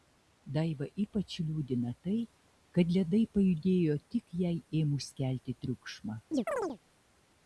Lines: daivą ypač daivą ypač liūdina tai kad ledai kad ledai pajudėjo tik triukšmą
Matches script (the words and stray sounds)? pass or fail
fail